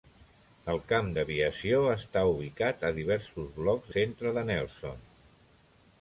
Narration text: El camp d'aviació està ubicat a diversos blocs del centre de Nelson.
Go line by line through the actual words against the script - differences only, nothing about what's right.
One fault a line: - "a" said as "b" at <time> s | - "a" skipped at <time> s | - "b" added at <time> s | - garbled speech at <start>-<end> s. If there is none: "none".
- "del" skipped at 3.9 s